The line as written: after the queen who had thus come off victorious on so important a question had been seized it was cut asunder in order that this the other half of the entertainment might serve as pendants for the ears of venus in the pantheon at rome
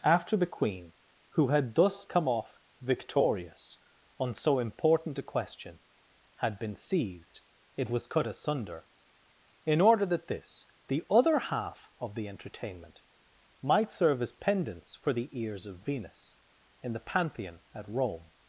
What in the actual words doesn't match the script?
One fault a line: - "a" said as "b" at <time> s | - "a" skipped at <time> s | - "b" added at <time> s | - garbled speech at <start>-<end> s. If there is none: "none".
none